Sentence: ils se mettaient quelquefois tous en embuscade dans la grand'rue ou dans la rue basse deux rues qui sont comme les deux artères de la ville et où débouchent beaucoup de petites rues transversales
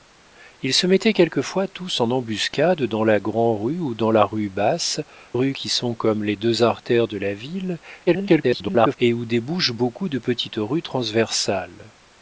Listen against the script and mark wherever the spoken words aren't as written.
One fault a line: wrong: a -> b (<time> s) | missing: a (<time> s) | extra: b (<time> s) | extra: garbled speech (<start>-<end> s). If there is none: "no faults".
missing: deux (5.0 s)
extra: garbled speech (8.1-9.0 s)